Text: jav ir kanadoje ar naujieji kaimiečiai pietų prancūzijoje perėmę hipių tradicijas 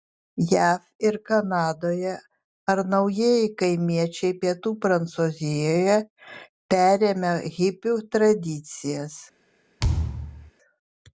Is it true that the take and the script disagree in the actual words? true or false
false